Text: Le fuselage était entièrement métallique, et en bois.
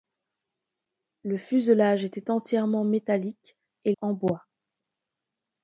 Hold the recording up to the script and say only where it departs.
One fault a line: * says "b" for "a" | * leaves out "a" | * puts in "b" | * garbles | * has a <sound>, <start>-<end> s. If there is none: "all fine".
all fine